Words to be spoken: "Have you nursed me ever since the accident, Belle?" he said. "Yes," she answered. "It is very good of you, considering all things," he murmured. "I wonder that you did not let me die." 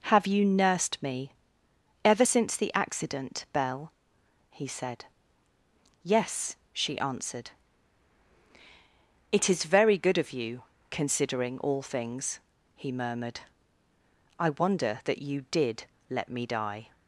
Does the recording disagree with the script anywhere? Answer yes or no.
yes